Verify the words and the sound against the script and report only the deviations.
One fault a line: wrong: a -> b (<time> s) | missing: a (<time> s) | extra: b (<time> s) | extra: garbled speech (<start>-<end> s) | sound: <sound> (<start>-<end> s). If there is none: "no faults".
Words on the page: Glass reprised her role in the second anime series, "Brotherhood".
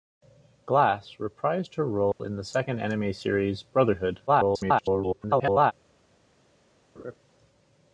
sound: dropout (2.1-2.2 s)
extra: garbled speech (4.3-5.7 s)
sound: laugh (7.0-7.2 s)